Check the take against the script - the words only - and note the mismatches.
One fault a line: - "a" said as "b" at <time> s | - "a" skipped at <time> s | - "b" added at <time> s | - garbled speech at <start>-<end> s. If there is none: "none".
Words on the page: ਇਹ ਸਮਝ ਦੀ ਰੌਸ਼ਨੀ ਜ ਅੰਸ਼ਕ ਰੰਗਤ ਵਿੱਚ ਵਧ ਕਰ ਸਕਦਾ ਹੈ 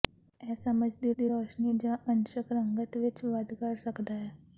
- "ਦੀ" added at 1.1 s